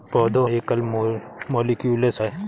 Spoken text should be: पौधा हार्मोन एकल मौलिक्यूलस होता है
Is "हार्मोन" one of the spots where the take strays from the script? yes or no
yes